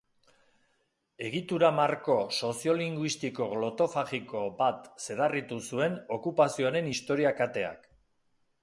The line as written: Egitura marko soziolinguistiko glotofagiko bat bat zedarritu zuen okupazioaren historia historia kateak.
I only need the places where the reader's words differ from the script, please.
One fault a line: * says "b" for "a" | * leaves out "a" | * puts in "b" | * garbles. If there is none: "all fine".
* leaves out "bat"
* leaves out "historia"